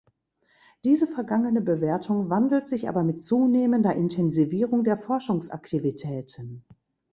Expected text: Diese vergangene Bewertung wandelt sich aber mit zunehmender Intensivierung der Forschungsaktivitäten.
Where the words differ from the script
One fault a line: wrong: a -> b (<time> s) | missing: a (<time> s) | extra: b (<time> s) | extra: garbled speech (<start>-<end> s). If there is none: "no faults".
no faults